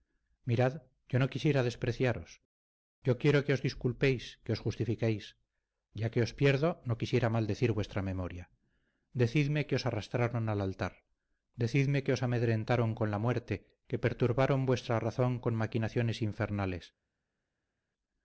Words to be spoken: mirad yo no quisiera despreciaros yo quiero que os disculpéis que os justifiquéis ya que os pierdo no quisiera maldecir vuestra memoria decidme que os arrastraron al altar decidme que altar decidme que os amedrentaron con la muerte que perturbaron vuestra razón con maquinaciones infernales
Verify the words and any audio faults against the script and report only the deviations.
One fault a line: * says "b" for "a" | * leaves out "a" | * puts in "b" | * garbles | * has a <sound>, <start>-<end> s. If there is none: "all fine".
* leaves out "altar decidme que"